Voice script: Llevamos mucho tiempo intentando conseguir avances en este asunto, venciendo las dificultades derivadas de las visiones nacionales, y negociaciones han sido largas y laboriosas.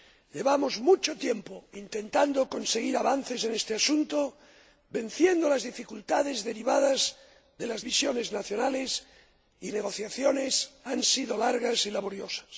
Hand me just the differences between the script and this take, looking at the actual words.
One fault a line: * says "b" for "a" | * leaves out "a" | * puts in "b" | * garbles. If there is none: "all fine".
all fine